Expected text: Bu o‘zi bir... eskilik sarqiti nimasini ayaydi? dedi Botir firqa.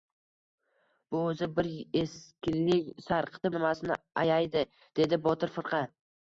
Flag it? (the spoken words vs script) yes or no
no